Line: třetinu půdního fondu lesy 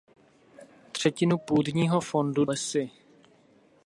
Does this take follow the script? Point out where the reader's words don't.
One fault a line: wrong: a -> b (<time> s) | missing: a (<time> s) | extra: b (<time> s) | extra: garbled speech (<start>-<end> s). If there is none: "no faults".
no faults